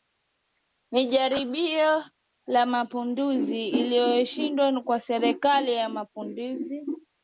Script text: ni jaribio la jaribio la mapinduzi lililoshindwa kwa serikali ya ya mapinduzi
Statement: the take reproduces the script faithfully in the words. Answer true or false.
false